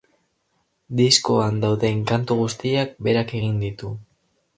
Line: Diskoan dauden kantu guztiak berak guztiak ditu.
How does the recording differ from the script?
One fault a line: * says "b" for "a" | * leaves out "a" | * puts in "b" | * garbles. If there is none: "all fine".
* says "egin" for "guztiak"